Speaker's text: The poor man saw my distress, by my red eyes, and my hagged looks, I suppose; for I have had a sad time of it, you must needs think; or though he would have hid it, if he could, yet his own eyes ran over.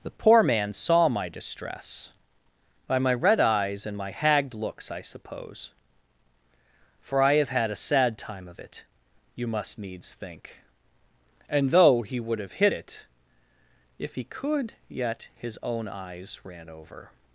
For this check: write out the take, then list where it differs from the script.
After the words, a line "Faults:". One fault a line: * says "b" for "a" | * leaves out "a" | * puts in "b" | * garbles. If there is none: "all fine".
The poor man saw my distress, by my red eyes, and my hagged looks, I suppose; for I have had a sad time of it, you must needs think; and though he would have hid it, if he could, yet his own eyes ran over.
Faults:
* says "and" for "or"